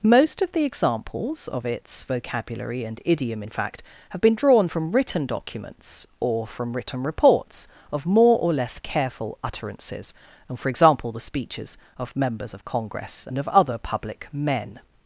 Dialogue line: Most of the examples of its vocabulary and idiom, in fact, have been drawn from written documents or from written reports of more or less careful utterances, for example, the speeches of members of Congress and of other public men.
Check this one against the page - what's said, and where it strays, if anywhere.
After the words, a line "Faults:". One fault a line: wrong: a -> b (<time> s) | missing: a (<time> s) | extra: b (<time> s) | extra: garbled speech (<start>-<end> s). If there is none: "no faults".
Most of the examples of its vocabulary and idiom, in fact, have been drawn from written documents or from written reports of more or less careful utterances, and for example, the speeches of members of Congress and of other public men.
Faults:
extra: and (10.5 s)